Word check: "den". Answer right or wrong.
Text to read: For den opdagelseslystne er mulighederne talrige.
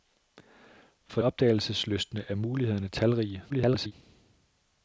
wrong